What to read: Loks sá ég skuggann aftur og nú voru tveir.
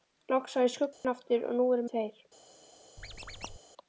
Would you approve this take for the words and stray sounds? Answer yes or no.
no